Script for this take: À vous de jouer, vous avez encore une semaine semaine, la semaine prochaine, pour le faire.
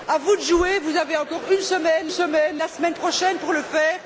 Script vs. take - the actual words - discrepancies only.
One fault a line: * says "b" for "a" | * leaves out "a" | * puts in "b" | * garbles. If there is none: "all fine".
all fine